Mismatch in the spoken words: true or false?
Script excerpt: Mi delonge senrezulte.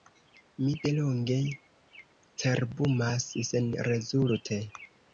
true